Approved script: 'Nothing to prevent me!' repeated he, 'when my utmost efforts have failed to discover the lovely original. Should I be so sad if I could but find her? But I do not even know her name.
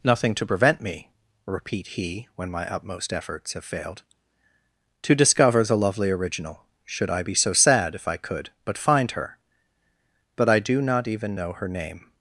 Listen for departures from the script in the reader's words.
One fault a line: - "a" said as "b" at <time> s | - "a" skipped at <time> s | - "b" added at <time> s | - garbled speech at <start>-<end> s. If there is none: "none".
- "repeated" said as "repeat" at 1.4 s